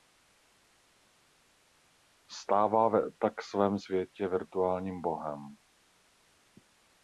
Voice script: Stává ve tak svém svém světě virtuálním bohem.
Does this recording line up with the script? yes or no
no